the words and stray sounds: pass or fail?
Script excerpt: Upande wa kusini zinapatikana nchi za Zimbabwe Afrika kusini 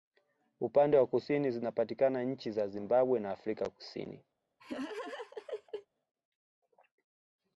fail